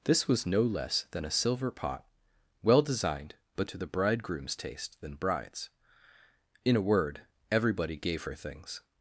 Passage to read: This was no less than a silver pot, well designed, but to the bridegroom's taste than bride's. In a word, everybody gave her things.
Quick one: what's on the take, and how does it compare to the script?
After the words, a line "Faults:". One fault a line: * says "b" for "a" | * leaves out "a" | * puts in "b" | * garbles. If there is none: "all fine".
This was no less than a silver pot, well designed, but to the bridegroom's taste than bride's. In a word, everybody gave her things.
Faults:
all fine